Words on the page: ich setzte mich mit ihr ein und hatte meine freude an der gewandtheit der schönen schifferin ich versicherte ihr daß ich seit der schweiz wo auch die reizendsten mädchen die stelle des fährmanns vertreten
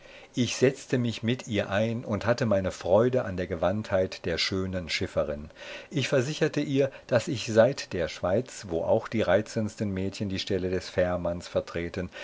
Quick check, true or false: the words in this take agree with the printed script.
true